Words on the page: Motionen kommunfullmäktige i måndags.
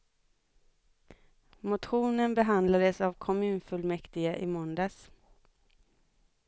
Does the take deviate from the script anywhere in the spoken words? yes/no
yes